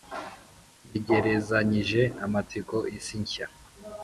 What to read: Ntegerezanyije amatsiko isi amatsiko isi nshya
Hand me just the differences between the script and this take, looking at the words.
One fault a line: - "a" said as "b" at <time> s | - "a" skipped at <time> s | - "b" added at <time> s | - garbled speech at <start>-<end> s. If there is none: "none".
- "amatsiko isi" skipped at 3.2 s